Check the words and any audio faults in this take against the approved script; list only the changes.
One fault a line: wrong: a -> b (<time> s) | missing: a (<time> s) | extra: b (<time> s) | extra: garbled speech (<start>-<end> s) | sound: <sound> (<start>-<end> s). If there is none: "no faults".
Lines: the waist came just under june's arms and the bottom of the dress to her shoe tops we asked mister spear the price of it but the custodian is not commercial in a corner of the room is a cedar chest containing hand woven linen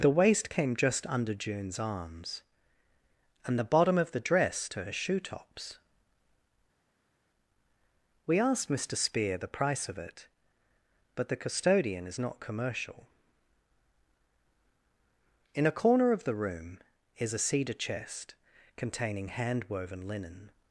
no faults